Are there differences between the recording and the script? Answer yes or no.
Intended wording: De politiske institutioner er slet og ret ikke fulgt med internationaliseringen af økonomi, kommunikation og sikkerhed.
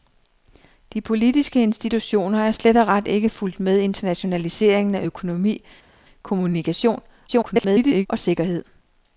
yes